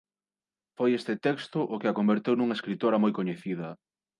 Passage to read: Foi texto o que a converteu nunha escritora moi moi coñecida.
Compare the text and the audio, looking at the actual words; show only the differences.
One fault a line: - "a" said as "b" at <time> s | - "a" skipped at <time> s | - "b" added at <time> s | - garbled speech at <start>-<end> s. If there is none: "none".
- "este" added at 1.0 s
- "moi" skipped at 3.1 s